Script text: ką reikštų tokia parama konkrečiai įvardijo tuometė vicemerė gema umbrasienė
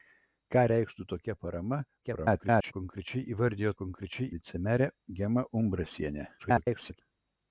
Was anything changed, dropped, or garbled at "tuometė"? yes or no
yes